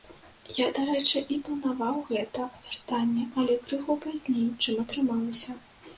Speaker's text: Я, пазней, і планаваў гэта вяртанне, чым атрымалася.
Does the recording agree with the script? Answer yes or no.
no